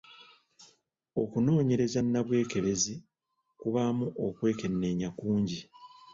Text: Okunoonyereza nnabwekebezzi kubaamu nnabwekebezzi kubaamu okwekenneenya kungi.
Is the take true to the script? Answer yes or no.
no